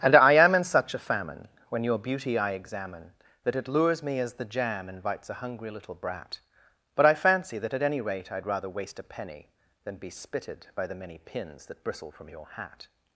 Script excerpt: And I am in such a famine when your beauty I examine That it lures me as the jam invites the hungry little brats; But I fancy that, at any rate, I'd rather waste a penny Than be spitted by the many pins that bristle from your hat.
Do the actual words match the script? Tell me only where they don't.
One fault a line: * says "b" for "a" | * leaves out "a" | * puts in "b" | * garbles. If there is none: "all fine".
* says "a" for "the"
* says "brat" for "brats"